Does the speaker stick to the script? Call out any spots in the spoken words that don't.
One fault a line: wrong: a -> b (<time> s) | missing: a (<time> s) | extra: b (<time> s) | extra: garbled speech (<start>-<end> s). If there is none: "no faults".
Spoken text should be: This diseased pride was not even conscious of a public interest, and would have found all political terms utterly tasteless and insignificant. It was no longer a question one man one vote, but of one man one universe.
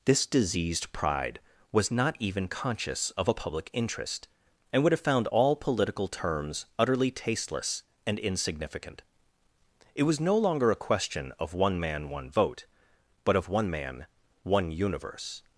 extra: of (11.4 s)